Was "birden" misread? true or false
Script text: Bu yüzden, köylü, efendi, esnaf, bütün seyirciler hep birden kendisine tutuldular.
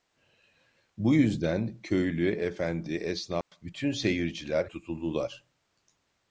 true